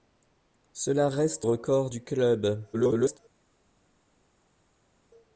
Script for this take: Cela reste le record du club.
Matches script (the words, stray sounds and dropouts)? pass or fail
fail